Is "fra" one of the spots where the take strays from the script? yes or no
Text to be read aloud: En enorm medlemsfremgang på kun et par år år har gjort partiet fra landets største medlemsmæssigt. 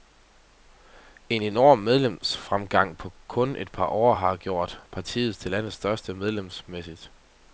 yes